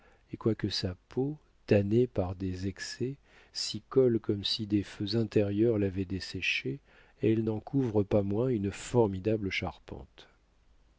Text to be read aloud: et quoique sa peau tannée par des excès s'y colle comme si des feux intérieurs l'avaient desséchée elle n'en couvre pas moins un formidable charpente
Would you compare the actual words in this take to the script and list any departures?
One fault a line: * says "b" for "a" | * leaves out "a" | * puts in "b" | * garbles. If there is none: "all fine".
* says "une" for "un"